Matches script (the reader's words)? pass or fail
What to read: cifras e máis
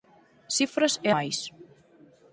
pass